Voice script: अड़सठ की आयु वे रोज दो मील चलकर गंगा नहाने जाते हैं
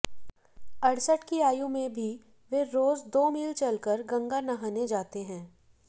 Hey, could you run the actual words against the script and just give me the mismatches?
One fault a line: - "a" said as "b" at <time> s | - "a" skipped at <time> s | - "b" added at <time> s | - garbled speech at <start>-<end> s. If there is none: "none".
- "में भी" added at 1.7 s